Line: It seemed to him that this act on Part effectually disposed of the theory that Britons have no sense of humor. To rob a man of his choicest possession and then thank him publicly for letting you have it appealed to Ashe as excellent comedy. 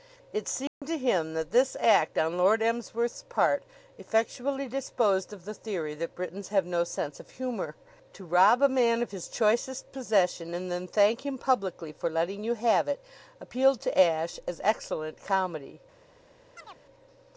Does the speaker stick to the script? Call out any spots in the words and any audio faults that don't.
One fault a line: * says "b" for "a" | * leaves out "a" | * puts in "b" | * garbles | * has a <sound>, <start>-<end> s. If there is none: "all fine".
* has a dropout, 0.7-0.8 s
* puts in "Lord Emsworth's"
* has a chirp, 16.6-16.8 s